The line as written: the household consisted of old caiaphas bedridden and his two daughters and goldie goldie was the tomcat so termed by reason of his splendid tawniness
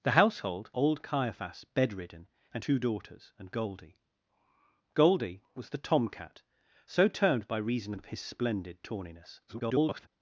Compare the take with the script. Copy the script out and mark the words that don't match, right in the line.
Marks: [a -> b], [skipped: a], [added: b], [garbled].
the household [skipped: consisted of] old caiaphas bedridden and [skipped: his] two daughters and goldie goldie was the tomcat so termed by reason of his splendid tawniness [garbled]